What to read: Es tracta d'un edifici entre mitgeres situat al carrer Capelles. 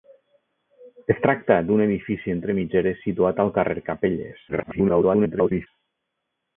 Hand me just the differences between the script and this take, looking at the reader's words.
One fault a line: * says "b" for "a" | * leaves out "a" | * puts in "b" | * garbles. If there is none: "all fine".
* garbles